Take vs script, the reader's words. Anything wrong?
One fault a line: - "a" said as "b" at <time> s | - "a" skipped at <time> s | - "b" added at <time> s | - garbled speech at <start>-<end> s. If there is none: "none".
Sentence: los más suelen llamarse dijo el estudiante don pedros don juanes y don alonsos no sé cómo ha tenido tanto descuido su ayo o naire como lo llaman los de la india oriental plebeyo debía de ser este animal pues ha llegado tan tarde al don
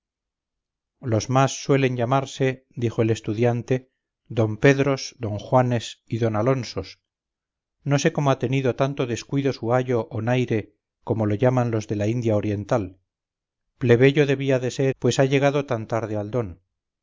- "este animal" skipped at 14.9 s